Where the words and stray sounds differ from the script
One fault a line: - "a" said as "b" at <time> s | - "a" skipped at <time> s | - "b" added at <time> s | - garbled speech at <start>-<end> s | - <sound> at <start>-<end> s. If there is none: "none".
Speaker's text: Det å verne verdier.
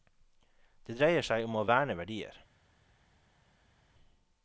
- "dreier seg om" added at 1.0 s